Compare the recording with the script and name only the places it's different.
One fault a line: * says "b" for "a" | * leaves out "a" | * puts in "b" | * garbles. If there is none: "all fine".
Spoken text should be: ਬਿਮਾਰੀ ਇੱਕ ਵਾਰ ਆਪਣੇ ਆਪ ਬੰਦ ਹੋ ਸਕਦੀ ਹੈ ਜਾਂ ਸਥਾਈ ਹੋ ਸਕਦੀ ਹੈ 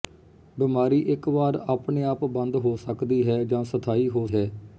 * leaves out "ਸਕਦੀ"